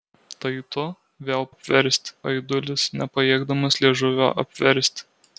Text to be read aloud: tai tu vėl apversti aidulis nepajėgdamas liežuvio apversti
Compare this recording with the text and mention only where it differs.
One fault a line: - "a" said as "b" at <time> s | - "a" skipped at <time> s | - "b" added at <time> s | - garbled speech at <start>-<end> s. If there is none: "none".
none